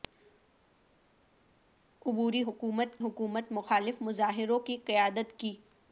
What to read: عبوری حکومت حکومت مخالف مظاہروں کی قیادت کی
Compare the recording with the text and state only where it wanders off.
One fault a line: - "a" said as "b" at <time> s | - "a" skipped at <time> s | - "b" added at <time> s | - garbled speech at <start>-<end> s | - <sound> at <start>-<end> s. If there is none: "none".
none